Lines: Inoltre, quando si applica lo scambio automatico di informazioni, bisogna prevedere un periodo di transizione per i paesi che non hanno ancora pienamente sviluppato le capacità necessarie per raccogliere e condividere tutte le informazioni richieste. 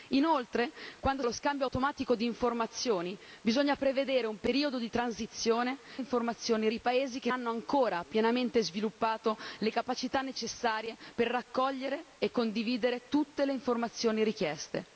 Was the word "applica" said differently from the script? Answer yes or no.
yes